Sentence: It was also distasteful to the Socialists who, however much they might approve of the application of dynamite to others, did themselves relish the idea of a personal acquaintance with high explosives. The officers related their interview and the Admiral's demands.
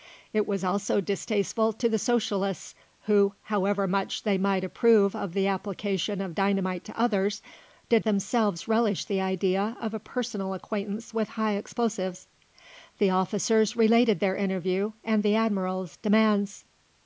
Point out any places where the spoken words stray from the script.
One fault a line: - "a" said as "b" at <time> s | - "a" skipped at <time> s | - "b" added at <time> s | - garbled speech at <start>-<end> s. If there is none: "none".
none